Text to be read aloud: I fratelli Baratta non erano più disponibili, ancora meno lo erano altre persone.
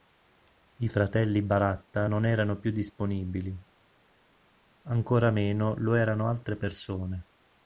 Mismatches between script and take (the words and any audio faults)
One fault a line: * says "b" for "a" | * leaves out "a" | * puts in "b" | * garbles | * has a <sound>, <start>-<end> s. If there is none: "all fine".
all fine